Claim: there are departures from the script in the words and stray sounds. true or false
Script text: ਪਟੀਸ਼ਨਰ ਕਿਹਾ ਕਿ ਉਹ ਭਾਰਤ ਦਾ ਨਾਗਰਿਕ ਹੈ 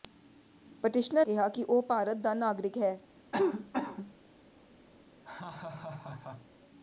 true